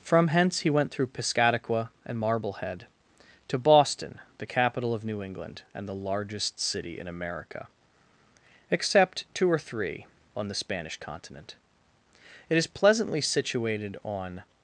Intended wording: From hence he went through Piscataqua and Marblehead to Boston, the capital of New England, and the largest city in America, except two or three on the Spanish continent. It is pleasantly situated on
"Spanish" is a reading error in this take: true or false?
false